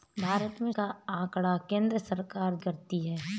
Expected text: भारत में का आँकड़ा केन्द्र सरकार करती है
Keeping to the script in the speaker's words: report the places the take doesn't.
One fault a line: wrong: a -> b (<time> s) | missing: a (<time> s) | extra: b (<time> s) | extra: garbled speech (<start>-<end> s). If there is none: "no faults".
no faults